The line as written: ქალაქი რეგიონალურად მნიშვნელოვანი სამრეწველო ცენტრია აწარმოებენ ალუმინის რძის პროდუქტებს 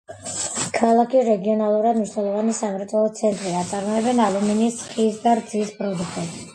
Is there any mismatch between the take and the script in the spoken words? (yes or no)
yes